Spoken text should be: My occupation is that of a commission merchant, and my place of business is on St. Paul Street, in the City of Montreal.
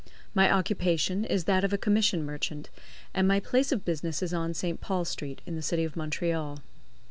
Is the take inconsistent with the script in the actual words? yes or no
no